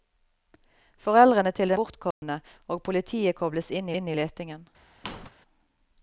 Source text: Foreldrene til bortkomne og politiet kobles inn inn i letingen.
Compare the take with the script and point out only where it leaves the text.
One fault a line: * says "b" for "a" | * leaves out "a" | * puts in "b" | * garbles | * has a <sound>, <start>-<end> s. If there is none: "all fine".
* has a dropout, 2.1-2.2 s
* has a squeak, 5.0-5.3 s